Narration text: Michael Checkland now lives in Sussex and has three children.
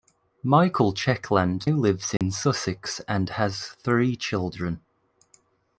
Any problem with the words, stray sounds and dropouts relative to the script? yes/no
yes